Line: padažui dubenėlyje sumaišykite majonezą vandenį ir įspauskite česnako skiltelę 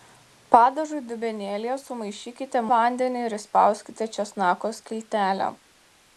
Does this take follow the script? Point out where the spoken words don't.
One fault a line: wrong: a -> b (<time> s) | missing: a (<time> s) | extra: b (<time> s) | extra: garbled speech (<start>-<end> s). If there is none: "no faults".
missing: majonezą (2.6 s)